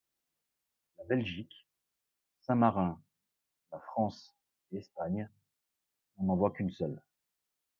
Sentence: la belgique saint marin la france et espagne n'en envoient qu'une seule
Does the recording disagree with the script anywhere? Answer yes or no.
no